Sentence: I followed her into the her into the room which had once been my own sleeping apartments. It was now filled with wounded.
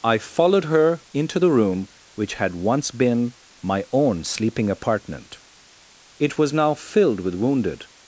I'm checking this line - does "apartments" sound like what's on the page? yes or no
no